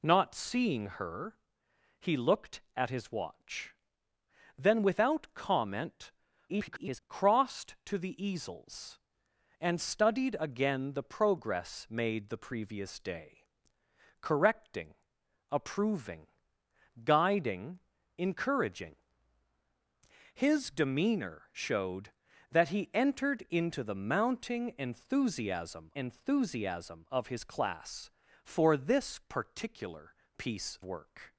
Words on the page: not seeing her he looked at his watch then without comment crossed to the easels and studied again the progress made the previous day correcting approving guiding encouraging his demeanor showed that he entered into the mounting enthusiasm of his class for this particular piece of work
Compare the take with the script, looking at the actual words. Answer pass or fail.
fail